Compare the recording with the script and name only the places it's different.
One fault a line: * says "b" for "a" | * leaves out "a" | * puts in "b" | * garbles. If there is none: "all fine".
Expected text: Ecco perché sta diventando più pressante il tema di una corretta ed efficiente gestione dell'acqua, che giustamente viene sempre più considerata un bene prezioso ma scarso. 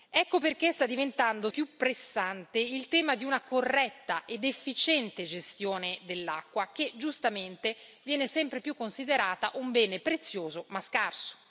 all fine